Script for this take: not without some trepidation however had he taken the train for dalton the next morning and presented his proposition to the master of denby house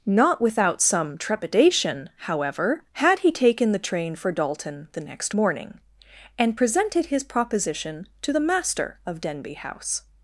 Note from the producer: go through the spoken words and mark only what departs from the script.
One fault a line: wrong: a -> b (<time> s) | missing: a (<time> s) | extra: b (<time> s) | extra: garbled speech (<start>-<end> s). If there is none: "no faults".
no faults